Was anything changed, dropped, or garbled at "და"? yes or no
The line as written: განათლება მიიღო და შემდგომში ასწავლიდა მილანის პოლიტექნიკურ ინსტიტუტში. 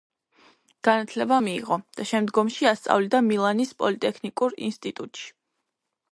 no